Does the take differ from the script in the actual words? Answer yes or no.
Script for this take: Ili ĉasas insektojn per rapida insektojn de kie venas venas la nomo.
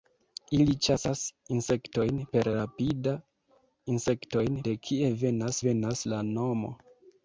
no